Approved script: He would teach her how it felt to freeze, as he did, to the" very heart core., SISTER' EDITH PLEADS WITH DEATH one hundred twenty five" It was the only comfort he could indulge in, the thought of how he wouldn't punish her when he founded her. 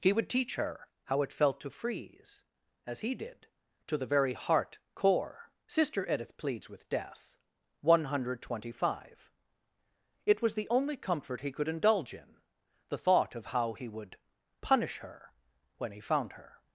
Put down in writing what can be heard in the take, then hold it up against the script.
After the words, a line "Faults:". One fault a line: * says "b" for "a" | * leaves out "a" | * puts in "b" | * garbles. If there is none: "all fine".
He would teach her how it felt to freeze, as he did, to the" very heart core., SISTER' EDITH PLEADS WITH DEATH one hundred twenty five" It was the only comfort he could indulge in, the thought of how he would punish her when he found her.
Faults:
* says "would" for "wouldn't"
* says "found" for "founded"